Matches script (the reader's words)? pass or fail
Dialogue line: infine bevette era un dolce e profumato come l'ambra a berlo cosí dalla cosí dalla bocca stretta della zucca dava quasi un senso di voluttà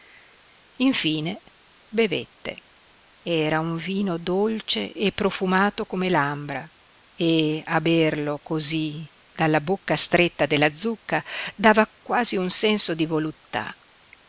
fail